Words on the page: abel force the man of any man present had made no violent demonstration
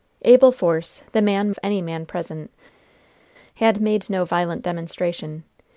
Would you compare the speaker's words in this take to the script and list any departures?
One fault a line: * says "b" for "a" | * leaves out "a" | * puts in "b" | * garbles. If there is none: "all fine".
all fine